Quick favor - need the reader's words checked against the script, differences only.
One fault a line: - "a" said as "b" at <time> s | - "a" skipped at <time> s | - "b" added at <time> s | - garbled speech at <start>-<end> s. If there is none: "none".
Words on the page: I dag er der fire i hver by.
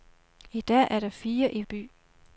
- "hver" skipped at 1.6 s